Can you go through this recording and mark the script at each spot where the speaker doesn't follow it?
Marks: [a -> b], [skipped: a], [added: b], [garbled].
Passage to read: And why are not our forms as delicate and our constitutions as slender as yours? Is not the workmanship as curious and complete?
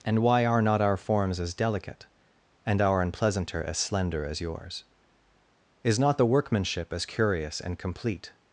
And why are not our forms as delicate and our [constitutions -> unpleasanter] as slender as yours? Is not the workmanship as curious and complete?